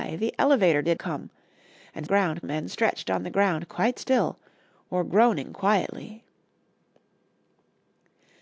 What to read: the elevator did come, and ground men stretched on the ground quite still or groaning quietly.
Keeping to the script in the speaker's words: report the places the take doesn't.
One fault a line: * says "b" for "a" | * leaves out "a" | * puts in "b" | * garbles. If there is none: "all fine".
all fine